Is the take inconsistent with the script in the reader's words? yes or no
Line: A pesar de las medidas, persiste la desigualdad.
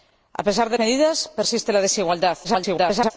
yes